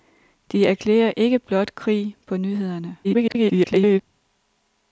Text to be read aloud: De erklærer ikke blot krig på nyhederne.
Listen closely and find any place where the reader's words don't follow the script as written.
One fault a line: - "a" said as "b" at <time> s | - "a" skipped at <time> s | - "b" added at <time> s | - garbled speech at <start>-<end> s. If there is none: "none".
- garbled speech at 3.0-4.0 s